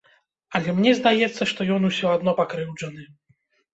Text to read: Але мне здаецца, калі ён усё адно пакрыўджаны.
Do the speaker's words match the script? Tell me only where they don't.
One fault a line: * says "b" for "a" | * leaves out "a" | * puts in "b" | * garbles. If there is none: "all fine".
* says "што" for "калі"